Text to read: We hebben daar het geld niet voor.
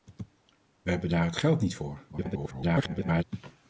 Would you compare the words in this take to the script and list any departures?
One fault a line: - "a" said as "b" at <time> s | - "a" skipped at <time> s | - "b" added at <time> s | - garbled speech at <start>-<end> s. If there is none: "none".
- garbled speech at 2.1-3.2 s